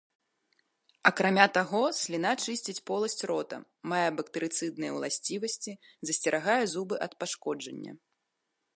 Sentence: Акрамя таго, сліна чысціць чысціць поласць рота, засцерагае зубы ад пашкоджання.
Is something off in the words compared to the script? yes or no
yes